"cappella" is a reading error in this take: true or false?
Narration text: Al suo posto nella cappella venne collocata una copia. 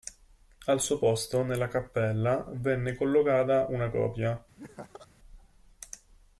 false